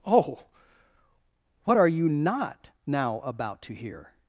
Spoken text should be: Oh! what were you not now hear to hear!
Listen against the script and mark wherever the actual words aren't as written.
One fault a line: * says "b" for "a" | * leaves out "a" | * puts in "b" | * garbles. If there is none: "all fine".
* says "are" for "were"
* says "about" for "hear"